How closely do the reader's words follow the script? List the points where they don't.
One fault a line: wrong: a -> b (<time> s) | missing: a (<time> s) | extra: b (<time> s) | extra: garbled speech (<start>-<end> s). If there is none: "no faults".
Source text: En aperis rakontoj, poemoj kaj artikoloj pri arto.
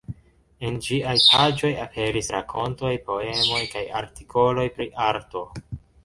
extra: ĝiaj paĝoj (0.8 s)